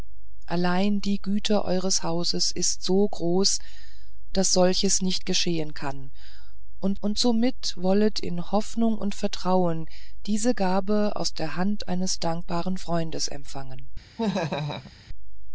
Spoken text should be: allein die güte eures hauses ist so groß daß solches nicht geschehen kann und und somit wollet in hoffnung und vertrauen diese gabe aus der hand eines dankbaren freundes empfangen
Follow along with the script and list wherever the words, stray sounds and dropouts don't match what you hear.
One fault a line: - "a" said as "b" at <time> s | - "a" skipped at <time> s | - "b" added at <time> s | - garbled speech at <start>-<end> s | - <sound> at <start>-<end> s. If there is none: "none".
- laugh at 14.2-14.9 s